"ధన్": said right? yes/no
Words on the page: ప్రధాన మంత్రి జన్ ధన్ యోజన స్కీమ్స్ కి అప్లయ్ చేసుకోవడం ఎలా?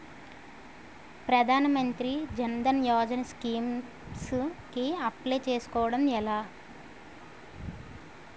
yes